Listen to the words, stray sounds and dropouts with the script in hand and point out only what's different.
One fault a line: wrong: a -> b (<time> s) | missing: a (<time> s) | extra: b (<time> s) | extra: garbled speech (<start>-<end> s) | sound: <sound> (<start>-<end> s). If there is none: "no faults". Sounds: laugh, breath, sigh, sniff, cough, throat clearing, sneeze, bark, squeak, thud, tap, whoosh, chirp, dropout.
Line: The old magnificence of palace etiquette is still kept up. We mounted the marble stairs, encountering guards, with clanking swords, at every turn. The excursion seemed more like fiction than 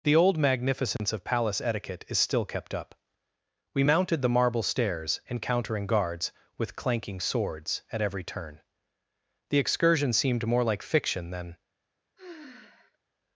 sound: dropout (1.0-1.0 s)
sound: sigh (12.2-13.0 s)